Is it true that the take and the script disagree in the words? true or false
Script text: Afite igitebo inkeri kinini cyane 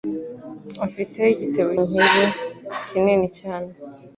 false